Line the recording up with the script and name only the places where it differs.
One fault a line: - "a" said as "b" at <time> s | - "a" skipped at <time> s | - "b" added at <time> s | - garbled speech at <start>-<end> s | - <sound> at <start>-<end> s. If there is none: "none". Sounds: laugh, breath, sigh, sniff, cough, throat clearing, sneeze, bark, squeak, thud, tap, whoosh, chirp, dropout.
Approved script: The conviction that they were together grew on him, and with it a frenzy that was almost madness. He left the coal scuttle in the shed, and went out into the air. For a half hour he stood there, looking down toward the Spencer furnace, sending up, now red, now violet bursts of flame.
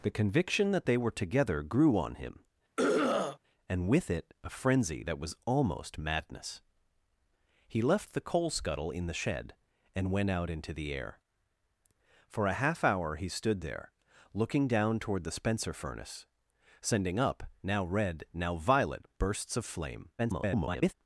- throat clearing at 2.8-3.4 s
- garbled speech at 20.2-20.9 s